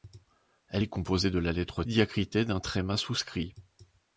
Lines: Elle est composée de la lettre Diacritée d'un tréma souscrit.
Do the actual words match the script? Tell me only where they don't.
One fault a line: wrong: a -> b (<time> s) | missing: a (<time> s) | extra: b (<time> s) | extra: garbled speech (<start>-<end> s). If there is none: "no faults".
no faults